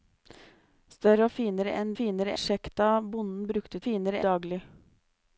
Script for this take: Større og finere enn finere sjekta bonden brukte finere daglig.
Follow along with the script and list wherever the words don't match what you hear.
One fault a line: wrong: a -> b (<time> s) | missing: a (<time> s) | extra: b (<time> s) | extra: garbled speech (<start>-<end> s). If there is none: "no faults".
no faults